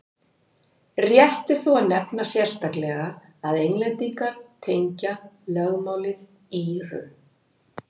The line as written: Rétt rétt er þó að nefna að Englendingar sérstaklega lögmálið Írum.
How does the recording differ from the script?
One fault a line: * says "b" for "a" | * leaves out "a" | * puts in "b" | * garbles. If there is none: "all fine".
* leaves out "rétt"
* puts in "sérstaklega"
* says "tengja" for "sérstaklega"